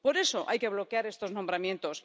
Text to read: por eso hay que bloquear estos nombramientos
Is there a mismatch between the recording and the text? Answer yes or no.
no